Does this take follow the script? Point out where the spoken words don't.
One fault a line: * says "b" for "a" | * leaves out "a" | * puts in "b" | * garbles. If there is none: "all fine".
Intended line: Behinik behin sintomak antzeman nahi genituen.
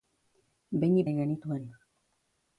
* leaves out "behin sintomak antzeman"